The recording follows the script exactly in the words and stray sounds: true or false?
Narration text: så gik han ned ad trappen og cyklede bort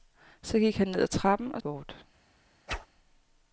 false